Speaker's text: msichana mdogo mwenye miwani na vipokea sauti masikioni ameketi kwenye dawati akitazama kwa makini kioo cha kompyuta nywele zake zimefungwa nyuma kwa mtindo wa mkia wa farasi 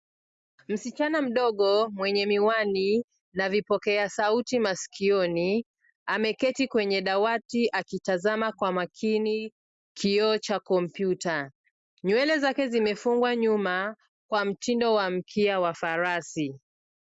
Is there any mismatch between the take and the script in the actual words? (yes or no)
no